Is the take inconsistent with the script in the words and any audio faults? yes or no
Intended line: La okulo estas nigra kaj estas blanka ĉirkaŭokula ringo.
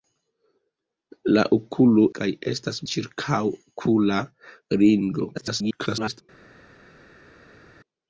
yes